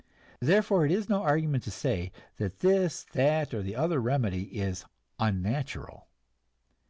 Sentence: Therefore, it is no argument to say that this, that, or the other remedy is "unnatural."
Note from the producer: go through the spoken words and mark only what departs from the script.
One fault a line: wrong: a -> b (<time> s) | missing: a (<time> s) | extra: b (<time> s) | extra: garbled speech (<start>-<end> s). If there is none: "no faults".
no faults